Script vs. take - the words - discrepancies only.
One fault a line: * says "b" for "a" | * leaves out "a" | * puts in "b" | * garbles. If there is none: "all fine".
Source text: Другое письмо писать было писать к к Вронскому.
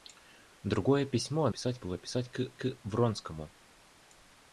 all fine